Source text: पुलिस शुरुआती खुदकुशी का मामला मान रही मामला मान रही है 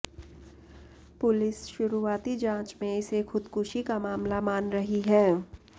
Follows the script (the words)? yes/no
no